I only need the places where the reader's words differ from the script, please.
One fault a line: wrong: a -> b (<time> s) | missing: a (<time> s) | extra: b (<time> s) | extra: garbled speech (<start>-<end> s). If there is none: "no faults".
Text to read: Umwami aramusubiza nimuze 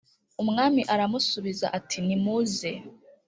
extra: ati (1.8 s)